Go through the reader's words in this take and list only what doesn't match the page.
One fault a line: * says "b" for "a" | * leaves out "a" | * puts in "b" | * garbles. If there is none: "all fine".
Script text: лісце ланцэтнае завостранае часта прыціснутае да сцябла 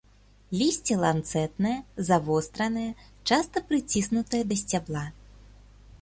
all fine